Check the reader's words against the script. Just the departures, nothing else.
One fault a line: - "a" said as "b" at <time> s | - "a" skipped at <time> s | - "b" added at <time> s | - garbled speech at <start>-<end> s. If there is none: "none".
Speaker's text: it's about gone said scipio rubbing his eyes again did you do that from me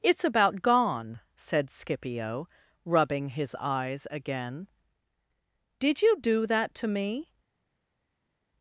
- "from" said as "to" at 6.8 s